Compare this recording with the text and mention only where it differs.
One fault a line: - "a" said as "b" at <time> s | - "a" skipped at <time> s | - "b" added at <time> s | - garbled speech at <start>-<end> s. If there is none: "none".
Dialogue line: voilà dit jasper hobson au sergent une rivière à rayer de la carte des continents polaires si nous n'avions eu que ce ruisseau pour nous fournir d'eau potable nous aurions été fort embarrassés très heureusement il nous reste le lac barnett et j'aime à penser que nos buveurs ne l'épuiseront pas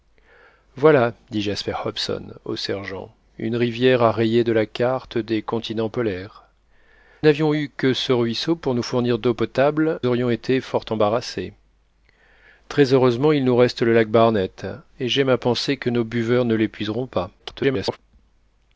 - "si nous" skipped at 6.5 s
- "nous" skipped at 10.0 s
- garbled speech at 17.4-18.0 s